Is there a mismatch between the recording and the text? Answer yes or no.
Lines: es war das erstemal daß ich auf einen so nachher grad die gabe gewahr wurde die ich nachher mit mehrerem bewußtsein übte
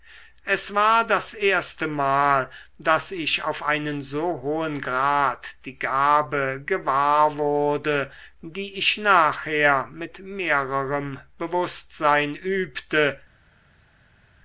yes